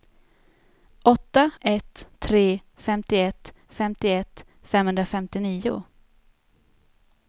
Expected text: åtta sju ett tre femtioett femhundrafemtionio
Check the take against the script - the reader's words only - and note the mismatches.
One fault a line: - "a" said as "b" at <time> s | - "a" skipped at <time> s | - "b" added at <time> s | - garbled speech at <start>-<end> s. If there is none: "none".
- "sju" skipped at 1.5 s
- "femtioett" added at 3.7 s